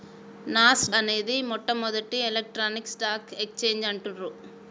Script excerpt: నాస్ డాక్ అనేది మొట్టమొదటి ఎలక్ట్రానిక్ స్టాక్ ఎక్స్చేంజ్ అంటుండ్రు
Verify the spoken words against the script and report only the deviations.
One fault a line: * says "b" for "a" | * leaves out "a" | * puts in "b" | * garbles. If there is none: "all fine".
* leaves out "డాక్"